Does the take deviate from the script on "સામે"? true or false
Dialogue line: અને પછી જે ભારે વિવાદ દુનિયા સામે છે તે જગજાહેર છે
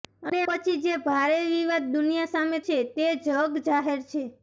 false